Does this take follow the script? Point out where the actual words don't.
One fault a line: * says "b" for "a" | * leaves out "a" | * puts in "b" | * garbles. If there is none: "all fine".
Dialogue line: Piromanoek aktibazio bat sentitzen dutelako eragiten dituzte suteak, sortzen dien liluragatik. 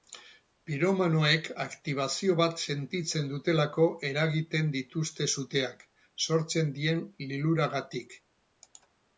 all fine